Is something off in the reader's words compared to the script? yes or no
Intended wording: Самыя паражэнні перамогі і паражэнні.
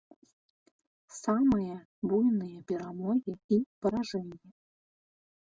yes